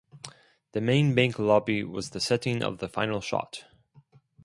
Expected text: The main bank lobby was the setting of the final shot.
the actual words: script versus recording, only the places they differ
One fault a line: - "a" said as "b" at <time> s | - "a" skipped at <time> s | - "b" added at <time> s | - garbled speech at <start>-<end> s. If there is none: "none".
none